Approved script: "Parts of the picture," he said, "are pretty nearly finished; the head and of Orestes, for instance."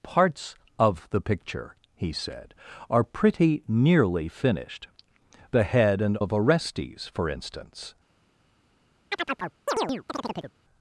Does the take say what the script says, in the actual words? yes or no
yes